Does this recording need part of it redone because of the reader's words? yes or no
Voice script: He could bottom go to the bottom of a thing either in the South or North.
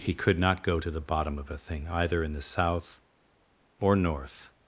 yes